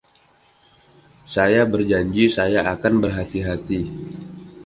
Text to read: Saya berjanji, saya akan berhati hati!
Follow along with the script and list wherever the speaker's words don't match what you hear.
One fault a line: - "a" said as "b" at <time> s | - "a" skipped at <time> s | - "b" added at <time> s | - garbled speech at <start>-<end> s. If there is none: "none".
none